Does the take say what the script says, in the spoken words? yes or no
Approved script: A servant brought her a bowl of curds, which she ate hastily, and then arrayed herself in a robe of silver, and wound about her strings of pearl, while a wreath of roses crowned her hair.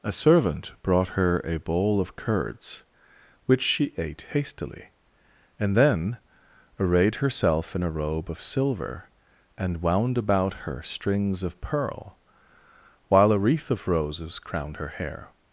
yes